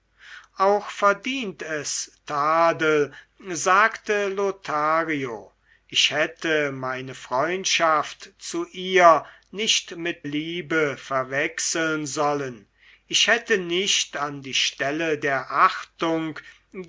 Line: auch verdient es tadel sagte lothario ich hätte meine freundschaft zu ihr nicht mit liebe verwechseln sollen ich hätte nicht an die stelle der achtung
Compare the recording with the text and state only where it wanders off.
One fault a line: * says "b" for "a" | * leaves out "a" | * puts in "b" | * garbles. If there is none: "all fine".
all fine